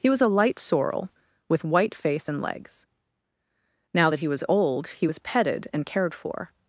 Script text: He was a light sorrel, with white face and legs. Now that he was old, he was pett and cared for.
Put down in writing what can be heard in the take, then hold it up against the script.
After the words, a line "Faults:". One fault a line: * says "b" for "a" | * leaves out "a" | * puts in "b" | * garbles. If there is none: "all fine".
He was a light sorrel, with white face and legs. Now that he was old, he was petted and cared for.
Faults:
* says "petted" for "pett"